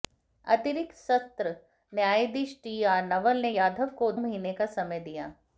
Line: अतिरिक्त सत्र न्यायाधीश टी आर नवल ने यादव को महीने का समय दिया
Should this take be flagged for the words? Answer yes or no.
no